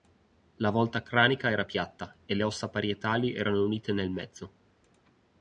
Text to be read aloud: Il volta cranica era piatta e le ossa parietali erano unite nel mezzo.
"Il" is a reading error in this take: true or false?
true